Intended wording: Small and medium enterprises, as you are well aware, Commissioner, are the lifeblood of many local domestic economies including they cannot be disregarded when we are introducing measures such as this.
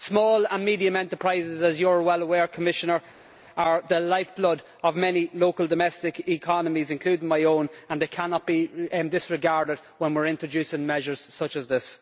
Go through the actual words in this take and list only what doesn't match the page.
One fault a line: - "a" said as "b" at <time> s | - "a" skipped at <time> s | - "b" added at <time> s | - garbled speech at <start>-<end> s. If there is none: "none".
- "my own and" added at 7.3 s